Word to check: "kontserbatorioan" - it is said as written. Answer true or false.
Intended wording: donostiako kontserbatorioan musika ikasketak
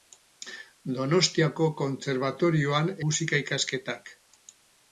true